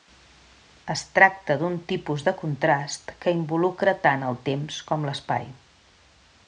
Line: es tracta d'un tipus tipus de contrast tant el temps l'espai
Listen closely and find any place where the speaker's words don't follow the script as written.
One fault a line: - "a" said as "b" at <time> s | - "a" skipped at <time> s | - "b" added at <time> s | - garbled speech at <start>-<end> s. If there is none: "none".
- "tipus" skipped at 2.2 s
- "que involucra" added at 3.2 s
- "com" added at 4.9 s